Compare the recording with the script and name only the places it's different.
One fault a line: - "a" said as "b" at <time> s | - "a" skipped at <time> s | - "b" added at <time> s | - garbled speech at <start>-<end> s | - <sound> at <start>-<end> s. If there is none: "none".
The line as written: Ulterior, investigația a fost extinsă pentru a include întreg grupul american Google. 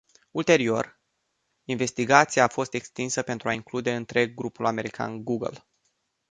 none